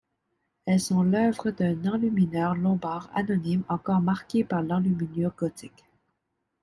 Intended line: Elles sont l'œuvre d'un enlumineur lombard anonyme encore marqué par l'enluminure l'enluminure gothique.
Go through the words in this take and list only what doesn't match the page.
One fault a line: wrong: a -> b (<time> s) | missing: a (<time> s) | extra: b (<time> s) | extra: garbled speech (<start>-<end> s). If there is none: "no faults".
missing: l'enluminure (5.3 s)